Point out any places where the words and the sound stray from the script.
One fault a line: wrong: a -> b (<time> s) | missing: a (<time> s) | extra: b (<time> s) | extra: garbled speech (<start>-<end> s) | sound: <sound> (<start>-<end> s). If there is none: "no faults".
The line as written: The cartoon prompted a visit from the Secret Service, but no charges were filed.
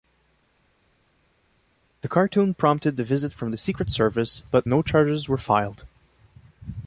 no faults